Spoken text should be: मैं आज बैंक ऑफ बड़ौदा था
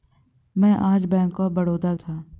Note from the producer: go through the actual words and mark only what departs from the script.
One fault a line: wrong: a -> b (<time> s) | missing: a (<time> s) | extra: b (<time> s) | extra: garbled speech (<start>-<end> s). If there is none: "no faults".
no faults